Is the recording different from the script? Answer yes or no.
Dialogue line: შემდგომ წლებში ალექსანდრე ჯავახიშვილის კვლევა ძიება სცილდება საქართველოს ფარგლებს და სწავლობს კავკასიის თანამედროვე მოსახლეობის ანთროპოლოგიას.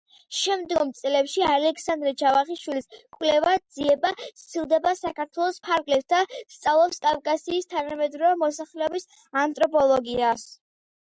no